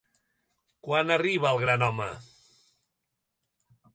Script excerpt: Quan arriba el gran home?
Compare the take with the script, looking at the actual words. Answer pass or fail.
pass